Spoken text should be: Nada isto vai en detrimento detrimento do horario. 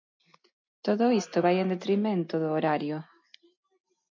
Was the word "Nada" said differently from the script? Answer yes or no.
yes